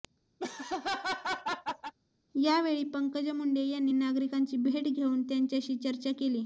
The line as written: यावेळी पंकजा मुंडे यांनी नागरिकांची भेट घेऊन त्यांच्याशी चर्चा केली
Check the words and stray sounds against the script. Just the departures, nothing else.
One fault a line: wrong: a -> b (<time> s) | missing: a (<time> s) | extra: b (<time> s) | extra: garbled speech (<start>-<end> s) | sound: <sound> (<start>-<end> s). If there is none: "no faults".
sound: laugh (0.4-1.9 s)